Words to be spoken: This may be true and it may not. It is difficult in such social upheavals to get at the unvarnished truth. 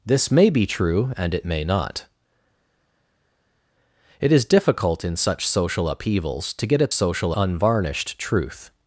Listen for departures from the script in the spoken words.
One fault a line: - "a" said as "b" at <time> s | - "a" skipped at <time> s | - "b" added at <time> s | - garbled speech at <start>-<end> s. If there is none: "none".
- "the" said as "social" at 6.9 s